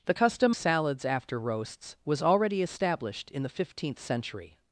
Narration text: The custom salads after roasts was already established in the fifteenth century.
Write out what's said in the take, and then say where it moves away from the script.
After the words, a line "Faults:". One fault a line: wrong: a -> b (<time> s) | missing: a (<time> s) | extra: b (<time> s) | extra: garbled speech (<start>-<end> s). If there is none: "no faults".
The custom salads after roasts was already established in the fifteenth century.
Faults:
no faults